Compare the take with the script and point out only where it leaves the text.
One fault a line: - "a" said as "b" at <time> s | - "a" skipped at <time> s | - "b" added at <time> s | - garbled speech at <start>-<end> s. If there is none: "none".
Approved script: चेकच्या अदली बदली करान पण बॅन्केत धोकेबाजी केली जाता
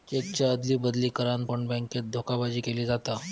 none